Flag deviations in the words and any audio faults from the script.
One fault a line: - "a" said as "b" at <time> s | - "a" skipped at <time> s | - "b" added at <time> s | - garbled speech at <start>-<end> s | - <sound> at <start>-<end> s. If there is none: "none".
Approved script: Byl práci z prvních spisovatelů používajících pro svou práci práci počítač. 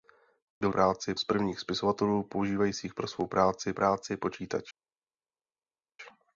none